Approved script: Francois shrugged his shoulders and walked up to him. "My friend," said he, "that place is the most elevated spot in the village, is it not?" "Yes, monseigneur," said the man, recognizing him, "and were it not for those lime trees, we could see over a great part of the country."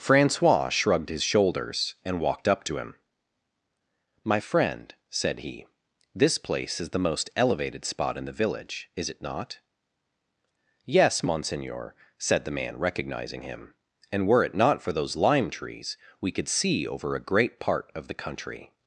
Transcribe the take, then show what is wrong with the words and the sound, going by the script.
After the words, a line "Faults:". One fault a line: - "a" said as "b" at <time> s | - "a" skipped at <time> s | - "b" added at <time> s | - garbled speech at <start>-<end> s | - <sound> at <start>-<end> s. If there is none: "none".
Francois shrugged his shoulders and walked up to him. "My friend," said he, "this place is the most elevated spot in the village, is it not?" "Yes, monseigneur," said the man, recognizing him, "and were it not for those lime trees, we could see over a great part of the country."
Faults:
- "that" said as "this" at 6.1 s